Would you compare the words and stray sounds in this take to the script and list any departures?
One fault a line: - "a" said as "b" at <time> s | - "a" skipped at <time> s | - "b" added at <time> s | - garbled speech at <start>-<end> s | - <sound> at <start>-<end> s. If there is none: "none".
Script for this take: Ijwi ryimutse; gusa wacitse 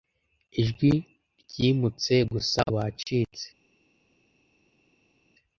none